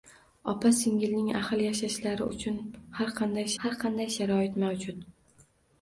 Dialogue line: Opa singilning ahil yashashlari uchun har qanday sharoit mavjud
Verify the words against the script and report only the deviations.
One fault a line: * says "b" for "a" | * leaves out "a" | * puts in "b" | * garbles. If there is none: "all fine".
* puts in "har qanday"